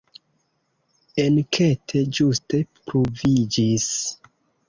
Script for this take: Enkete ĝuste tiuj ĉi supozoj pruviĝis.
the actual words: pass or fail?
fail